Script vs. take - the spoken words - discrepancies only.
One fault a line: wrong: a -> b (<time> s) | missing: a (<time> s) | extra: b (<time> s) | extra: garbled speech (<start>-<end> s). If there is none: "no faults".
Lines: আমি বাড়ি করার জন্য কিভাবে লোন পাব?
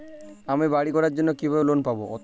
no faults